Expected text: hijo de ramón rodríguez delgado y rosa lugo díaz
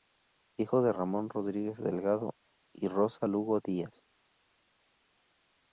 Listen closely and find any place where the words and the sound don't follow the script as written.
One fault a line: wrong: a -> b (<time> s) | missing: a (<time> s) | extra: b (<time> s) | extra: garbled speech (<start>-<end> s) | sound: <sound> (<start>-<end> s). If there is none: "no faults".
no faults